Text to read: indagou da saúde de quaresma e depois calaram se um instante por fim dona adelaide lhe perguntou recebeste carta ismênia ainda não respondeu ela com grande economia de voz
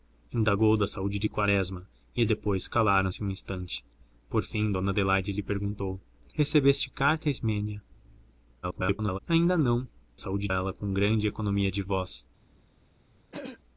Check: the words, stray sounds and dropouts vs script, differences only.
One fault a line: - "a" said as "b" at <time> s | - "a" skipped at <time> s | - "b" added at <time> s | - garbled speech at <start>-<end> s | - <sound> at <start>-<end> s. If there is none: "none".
- garbled speech at 8.6-9.2 s
- "respondeu" said as "saúde" at 10.2 s
- throat clearing at 13.3-13.6 s